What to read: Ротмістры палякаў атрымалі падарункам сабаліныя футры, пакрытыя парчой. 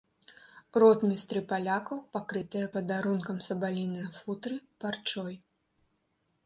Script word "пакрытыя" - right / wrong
wrong